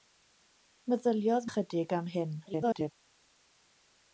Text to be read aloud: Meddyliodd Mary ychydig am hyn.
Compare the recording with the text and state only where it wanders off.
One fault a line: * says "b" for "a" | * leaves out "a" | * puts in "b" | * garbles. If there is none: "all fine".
* leaves out "Mary"
* garbles